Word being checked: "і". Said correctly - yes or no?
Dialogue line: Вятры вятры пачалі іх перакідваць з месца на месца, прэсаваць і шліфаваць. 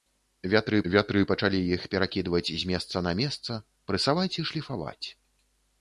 yes